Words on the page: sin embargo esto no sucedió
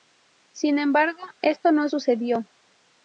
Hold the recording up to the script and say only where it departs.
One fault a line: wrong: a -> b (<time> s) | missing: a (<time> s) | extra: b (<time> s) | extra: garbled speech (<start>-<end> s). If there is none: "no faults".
no faults